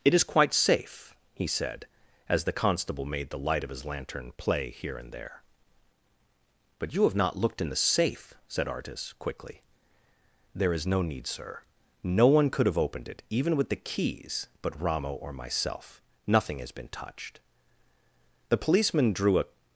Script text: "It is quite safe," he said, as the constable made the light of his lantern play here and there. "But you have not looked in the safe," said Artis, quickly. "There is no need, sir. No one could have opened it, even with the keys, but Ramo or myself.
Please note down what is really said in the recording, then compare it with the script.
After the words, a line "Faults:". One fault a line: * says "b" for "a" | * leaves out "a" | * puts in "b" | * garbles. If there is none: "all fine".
"It is quite safe," he said, as the constable made the light of his lantern play here and there. "But you have not looked in the safe," said Artis, quickly. "There is no need, sir. No one could have opened it, even with the keys, but Ramo or myself. Nothing has been touched." The policeman drew a
Faults:
* puts in "Nothing has been touched The policeman drew a"